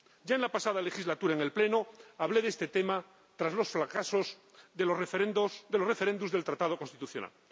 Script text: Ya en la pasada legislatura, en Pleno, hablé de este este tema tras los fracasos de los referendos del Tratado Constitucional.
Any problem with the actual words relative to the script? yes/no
yes